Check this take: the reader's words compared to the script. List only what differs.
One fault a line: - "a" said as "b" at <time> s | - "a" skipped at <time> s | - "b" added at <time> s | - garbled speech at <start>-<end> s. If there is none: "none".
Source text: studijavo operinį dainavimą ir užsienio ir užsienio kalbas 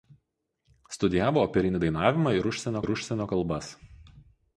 none